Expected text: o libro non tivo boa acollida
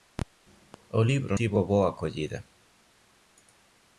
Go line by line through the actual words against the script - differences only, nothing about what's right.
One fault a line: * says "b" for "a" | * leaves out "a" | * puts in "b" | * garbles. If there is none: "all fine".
* leaves out "non"